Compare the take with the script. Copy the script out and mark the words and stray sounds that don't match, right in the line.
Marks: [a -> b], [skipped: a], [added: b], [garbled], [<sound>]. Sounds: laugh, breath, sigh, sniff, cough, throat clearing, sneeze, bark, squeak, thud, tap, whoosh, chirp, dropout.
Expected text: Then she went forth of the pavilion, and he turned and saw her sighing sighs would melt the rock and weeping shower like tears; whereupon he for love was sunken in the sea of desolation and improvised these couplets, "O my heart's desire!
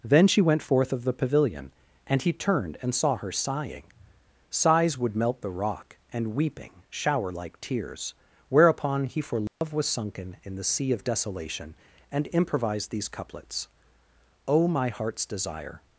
Then she went forth of the pavilion, and he turned and saw her sighing sighs would melt the rock and weeping shower like tears; whereupon he for love [dropout] was sunken in the sea of desolation and improvised these couplets, "O my heart's desire!